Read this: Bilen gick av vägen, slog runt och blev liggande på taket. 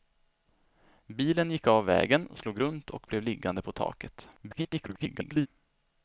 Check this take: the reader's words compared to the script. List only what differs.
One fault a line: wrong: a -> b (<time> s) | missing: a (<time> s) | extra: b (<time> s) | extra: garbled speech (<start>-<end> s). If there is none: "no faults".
extra: garbled speech (4.4-5.5 s)